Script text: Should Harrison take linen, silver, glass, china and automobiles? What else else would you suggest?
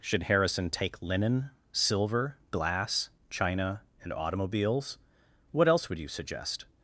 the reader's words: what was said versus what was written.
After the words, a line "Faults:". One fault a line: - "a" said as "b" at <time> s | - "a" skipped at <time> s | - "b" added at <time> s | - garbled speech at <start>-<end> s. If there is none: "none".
Should Harrison take linen, silver, glass, china and automobiles? What else would you suggest?
Faults:
- "else" skipped at 5.9 s